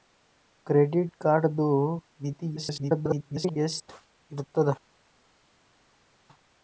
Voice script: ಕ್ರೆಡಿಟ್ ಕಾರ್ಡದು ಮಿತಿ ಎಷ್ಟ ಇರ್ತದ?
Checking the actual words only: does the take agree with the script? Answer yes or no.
no